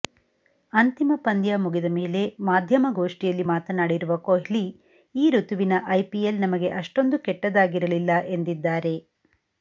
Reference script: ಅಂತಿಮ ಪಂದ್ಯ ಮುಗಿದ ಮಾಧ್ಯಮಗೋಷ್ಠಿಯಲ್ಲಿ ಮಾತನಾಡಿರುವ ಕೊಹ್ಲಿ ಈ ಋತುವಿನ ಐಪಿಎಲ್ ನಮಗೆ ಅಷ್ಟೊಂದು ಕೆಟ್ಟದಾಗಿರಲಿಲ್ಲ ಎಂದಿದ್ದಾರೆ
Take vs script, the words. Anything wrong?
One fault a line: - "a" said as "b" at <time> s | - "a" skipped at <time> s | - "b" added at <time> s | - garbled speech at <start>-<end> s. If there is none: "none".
- "ಮೇಲೆ" added at 2.0 s